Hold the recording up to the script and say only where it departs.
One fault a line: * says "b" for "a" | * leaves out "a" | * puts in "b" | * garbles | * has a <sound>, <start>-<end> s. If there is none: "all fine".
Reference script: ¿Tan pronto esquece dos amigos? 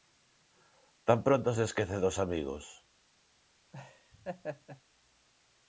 * puts in "se"
* has a laugh, 3.7-4.8 s